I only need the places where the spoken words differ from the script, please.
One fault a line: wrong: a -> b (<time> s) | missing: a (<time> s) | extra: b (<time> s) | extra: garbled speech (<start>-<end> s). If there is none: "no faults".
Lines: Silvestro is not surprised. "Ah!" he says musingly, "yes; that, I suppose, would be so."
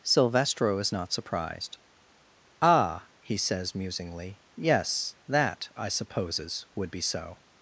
wrong: suppose -> supposes (5.9 s)